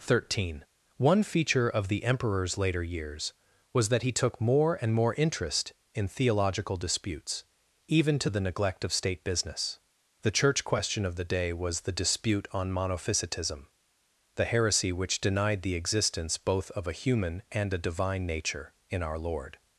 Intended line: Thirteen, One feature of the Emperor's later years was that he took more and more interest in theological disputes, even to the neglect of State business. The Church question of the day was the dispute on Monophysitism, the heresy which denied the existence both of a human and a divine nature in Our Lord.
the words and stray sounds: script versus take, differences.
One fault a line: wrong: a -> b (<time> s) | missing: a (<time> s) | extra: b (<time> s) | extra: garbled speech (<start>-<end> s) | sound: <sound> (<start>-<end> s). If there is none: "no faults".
no faults